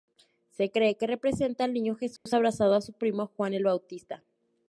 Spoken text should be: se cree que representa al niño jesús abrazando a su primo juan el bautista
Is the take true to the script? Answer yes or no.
yes